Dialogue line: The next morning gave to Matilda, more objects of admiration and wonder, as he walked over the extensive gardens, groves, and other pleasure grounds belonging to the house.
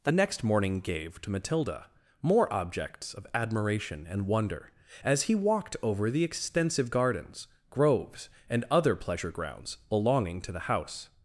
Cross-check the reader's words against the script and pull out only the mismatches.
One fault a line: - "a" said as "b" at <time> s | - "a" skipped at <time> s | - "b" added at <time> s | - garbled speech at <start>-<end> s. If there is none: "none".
none